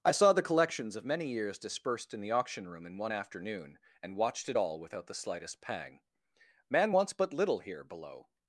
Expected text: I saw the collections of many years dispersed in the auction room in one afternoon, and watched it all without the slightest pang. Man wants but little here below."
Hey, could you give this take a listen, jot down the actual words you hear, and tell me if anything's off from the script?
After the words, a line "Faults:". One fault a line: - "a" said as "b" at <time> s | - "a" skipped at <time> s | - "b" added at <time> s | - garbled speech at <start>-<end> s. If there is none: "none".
I saw the collections of many years dispersed in the auction room in one afternoon, and watched it all without the slightest pang. Man wants but little here below."
Faults:
none